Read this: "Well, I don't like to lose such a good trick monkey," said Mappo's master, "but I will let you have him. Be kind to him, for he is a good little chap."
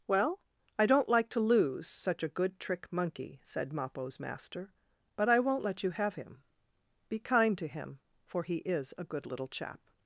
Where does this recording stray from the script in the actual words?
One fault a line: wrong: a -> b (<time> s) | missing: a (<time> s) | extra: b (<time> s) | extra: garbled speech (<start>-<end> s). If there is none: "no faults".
wrong: will -> won't (5.4 s)